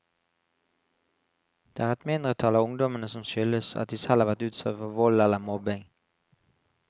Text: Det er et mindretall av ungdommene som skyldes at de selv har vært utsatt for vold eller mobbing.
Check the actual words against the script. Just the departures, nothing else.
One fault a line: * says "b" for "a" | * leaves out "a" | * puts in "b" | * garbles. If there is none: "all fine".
all fine